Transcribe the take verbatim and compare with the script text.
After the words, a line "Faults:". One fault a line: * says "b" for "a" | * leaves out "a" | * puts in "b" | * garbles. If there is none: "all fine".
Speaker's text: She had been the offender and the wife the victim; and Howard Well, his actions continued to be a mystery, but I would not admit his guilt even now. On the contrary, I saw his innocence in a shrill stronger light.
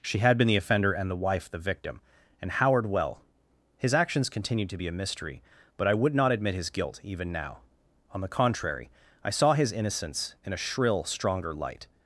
She had been the offender and the wife the victim; and Howard Well, his actions continued to be a mystery, but I would not admit his guilt even now. On the contrary, I saw his innocence in a shrill stronger light.
Faults:
all fine